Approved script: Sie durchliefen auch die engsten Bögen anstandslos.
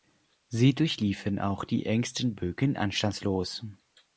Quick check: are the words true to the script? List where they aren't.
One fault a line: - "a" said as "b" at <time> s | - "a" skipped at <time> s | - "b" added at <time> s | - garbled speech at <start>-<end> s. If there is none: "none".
none